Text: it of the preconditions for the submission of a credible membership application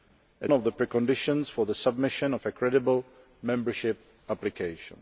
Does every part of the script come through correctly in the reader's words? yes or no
yes